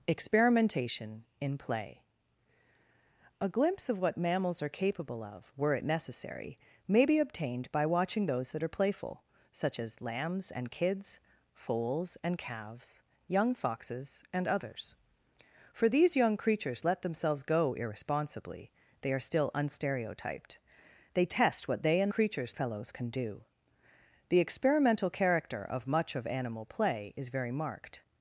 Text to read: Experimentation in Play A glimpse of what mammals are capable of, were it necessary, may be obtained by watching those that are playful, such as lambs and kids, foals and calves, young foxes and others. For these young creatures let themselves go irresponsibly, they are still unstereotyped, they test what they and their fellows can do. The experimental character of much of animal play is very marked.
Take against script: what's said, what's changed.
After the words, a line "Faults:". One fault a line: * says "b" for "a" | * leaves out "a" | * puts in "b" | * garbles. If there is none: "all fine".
Experimentation in Play A glimpse of what mammals are capable of, were it necessary, may be obtained by watching those that are playful, such as lambs and kids, foals and calves, young foxes and others. For these young creatures let themselves go irresponsibly, they are still unstereotyped, they test what they and creatures fellows can do. The experimental character of much of animal play is very marked.
Faults:
* says "creatures" for "their"